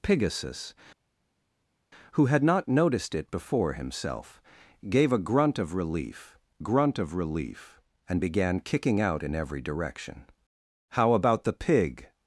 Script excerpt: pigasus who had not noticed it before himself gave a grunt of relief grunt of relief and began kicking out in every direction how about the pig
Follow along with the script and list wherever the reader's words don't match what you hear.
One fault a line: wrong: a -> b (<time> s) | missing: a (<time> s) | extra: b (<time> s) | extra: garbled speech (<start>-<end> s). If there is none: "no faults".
no faults